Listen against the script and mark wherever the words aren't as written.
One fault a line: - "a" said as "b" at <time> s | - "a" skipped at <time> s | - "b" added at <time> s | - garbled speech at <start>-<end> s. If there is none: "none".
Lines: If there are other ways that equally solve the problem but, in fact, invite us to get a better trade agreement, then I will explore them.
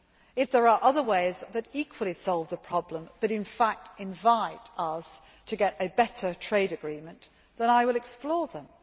none